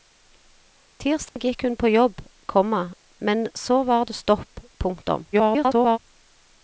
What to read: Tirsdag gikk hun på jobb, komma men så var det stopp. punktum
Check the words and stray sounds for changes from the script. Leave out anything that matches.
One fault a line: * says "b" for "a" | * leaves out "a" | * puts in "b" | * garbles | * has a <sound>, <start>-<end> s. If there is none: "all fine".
* has a dropout, 1.3-1.4 s
* garbles